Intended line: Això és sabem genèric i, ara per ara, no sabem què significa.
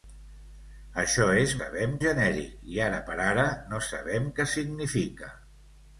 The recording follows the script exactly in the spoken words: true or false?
true